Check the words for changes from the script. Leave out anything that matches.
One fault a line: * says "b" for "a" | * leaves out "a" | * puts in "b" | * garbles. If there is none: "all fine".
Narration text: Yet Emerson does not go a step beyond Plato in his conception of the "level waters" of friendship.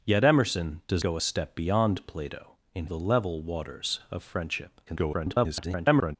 * leaves out "not"
* leaves out "his conception of"
* garbles